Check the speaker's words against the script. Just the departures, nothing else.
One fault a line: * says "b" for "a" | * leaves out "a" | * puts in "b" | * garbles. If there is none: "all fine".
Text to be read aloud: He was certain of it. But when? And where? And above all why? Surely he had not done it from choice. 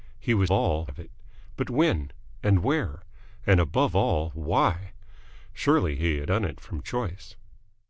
* says "all" for "certain"
* leaves out "not"